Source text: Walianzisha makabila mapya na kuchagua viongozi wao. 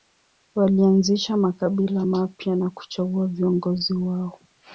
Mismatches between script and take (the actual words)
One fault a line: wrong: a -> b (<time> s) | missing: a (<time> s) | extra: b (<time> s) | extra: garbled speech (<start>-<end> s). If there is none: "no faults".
no faults